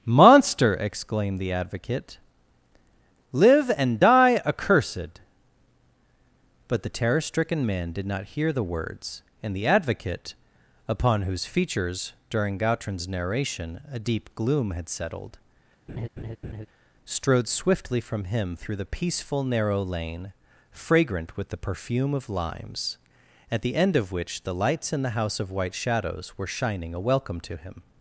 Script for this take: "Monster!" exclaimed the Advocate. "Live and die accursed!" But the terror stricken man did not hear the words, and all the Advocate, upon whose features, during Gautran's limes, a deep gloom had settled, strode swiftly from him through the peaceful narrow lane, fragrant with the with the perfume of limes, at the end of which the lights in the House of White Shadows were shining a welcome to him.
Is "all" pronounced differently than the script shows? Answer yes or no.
yes